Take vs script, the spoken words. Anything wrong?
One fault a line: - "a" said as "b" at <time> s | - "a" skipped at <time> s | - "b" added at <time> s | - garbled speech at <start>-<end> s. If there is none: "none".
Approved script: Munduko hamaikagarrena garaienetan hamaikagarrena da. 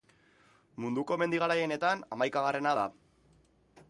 - "hamaikagarrena" said as "mendi" at 1.2 s